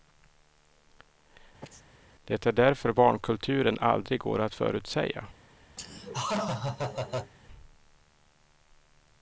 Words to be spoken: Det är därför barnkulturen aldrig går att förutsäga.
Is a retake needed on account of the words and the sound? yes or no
yes